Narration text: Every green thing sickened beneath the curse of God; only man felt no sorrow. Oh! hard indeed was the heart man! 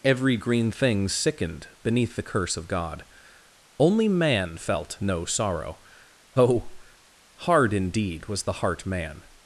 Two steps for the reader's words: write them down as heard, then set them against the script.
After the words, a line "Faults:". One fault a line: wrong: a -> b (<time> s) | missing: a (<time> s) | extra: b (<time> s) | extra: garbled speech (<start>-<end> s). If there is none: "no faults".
Every green thing sickened beneath the curse of God; only man felt no sorrow. Oh! hard indeed was the heart man!
Faults:
no faults